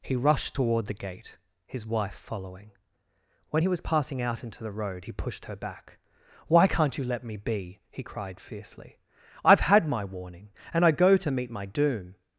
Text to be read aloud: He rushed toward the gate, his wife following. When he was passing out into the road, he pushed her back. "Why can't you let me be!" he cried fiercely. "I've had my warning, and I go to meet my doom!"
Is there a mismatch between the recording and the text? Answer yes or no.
no